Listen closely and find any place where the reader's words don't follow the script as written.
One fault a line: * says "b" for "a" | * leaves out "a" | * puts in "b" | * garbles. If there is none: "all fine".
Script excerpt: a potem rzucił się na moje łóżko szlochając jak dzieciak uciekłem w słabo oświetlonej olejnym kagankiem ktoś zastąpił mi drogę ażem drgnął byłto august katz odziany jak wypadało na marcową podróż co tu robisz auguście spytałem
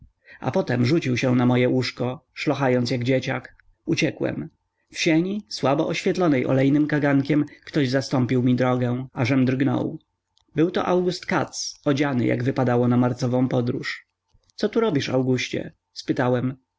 * puts in "sieni"